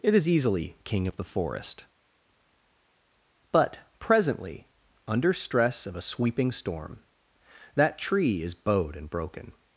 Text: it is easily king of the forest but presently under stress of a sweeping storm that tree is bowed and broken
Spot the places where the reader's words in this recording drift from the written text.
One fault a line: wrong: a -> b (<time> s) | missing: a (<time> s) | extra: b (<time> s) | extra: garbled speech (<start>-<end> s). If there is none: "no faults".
no faults